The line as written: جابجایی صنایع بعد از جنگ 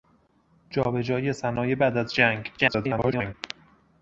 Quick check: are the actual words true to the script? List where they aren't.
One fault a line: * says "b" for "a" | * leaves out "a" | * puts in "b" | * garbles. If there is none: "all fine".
* garbles